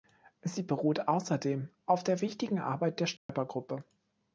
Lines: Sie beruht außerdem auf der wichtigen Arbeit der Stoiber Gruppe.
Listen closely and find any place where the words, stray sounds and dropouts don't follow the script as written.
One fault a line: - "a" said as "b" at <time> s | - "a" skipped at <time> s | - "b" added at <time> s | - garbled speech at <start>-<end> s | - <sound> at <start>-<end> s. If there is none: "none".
- dropout at 3.2-3.3 s